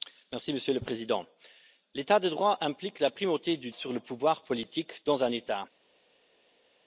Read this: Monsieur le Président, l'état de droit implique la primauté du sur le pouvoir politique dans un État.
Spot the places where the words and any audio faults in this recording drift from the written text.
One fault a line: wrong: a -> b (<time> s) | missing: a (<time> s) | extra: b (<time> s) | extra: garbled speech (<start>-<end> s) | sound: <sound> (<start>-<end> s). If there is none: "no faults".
no faults